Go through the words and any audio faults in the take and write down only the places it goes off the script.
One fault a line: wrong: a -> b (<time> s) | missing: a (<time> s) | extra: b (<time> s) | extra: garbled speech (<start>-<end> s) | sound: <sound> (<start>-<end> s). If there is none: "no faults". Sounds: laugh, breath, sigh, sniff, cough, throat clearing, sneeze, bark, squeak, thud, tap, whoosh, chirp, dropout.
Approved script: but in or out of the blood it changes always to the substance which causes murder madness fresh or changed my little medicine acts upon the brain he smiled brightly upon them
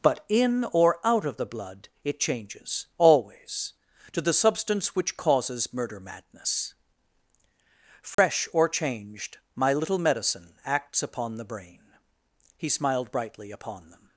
sound: dropout (8.1-8.2 s)